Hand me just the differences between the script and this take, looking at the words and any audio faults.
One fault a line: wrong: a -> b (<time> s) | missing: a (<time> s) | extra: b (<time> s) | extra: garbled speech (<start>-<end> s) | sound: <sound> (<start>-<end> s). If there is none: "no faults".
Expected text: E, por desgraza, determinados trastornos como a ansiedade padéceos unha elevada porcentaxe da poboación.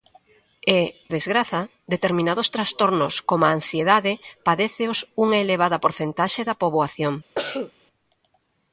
missing: por (0.8 s)
sound: cough (7.3-7.7 s)